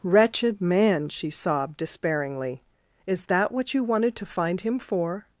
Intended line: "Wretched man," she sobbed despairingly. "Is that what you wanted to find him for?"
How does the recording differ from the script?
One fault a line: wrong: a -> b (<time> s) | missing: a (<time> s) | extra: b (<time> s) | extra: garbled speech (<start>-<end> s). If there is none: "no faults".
no faults